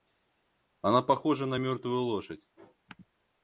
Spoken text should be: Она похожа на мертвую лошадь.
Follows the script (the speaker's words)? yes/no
yes